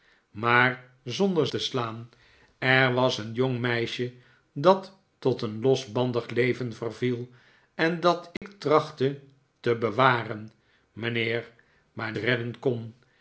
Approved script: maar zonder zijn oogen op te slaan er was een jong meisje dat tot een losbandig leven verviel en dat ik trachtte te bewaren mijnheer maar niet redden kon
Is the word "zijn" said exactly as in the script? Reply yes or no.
no